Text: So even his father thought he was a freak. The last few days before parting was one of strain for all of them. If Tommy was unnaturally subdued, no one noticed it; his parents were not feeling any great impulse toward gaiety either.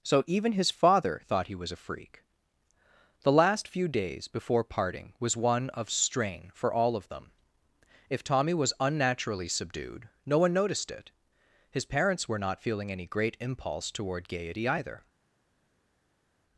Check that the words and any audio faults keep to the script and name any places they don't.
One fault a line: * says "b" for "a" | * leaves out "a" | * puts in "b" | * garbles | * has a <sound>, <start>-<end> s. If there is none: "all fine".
all fine